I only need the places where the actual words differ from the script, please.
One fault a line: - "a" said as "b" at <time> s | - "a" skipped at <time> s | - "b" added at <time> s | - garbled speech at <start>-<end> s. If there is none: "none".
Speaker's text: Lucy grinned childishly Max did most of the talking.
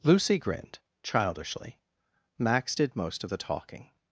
none